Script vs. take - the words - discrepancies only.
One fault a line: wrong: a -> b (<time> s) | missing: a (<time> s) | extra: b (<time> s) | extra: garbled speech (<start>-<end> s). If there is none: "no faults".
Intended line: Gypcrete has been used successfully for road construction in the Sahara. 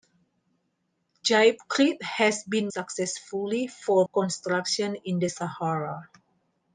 missing: used (2.7 s)
missing: road (4.1 s)